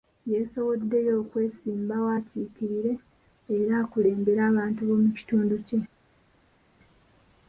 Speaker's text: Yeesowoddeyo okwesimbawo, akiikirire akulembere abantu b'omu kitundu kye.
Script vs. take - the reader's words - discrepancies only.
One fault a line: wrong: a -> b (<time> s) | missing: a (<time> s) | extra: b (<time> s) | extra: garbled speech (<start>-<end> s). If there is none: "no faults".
extra: era (3.6 s)